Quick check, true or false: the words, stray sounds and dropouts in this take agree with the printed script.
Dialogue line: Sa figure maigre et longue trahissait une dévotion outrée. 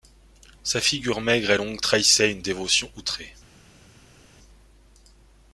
true